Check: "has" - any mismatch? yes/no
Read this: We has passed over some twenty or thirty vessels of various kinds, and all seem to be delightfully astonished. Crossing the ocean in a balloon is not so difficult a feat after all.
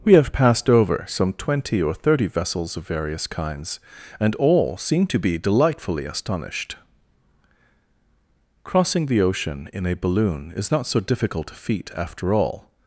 yes